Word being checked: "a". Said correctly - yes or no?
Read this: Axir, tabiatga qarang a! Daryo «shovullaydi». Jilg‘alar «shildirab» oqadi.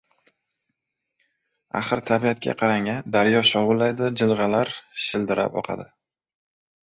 yes